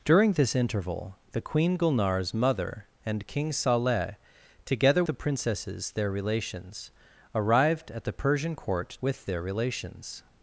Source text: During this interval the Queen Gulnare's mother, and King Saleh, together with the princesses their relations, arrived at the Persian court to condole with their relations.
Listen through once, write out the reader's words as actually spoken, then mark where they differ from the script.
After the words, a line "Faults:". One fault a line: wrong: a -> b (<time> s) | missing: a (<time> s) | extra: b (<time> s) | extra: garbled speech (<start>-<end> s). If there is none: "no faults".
During this interval the Queen Gulnare's mother, and King Saleh, together the princesses their relations, arrived at the Persian court with their relations.
Faults:
missing: with (5.0 s)
missing: to condole (9.0 s)